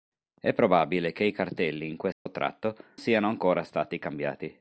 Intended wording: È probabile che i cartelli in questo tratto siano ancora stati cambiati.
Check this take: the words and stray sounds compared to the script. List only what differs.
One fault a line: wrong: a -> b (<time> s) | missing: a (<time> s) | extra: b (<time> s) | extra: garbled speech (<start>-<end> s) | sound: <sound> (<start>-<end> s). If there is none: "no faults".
sound: dropout (2.1-2.3 s)